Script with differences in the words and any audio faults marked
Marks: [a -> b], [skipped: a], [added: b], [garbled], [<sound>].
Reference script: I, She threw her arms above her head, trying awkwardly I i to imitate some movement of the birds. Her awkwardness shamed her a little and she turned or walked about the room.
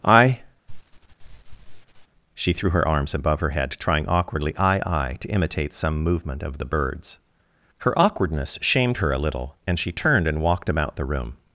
I, [sniff] She threw her arms above her head, trying awkwardly I i to imitate some movement of the birds. Her awkwardness shamed her a little and she turned [or -> and] walked about the room.